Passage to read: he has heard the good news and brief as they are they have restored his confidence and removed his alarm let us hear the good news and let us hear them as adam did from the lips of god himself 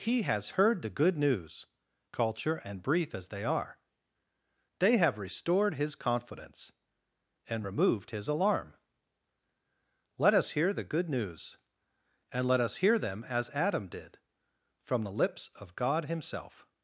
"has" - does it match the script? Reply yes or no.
yes